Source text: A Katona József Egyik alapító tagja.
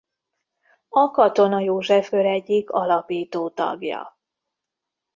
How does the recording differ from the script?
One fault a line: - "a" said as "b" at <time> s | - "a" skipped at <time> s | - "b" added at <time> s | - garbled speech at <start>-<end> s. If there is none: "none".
- "Kör" added at 2.1 s